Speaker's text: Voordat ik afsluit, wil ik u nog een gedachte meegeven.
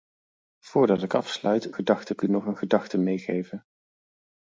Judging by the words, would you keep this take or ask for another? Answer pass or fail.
fail